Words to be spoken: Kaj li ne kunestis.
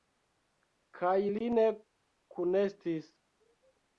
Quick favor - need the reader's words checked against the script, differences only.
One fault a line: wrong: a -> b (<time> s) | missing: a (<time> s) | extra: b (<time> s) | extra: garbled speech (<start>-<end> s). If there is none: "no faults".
no faults